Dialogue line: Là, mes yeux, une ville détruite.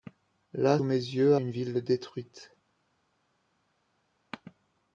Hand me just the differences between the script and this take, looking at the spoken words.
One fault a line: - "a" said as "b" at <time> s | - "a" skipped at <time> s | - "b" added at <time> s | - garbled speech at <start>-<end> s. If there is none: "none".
none